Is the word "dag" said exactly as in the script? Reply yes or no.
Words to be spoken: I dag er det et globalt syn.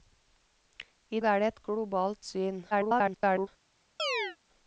no